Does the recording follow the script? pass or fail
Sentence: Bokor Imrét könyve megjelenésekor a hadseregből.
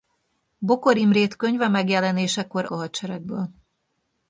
pass